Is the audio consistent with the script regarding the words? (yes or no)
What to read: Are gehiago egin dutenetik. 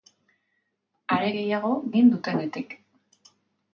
yes